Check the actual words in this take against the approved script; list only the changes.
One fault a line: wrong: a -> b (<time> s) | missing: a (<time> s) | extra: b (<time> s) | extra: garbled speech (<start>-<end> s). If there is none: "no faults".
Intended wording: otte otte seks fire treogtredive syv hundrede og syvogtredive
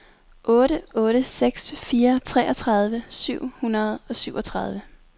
no faults